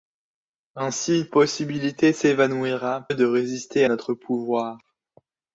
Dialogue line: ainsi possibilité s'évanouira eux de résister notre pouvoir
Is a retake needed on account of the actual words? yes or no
no